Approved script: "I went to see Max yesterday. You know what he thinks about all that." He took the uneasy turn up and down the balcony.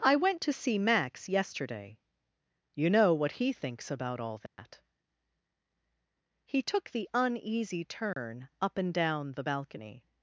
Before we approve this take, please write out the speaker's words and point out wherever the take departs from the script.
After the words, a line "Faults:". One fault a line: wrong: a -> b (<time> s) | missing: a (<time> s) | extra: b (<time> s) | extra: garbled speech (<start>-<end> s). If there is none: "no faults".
"I went to see Max yesterday. You know what he thinks about all that." He took the uneasy turn up and down the balcony.
Faults:
no faults